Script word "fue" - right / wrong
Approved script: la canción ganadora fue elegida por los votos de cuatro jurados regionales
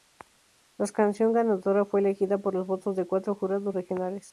right